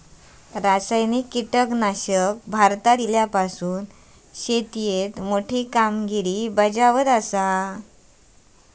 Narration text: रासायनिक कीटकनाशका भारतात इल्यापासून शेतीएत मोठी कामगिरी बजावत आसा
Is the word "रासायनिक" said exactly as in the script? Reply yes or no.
yes